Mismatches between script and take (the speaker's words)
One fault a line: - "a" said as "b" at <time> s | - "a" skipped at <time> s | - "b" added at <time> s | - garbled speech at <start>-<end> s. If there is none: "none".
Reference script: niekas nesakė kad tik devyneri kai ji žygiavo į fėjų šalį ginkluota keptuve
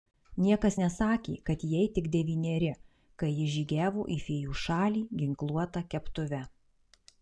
- "jai" added at 1.7 s